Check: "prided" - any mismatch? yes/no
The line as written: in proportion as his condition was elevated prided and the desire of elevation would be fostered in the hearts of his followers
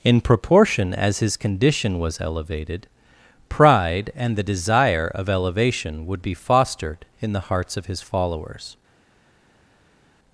yes